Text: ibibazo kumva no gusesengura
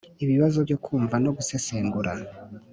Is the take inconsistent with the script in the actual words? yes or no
yes